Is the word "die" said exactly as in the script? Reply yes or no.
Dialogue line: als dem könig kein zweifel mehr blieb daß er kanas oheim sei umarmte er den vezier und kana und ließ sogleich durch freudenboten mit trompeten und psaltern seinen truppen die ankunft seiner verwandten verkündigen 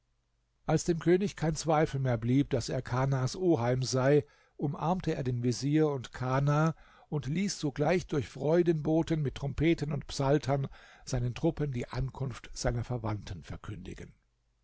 yes